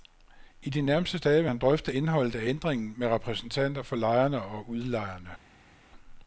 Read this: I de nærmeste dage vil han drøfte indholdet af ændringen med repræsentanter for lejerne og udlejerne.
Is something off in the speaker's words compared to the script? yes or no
no